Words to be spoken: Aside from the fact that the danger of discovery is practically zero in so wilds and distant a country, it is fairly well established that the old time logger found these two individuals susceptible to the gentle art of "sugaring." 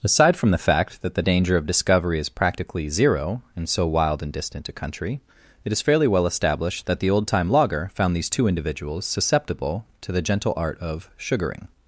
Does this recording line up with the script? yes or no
no